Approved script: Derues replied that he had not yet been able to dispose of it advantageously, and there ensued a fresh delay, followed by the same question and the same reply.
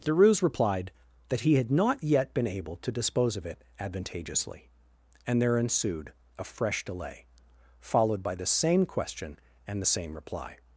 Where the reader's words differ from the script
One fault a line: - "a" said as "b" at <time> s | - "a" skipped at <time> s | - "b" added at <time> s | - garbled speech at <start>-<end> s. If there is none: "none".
none